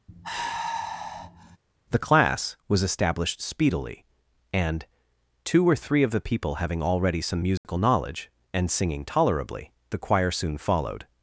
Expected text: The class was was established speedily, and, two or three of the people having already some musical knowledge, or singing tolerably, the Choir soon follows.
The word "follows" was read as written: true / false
false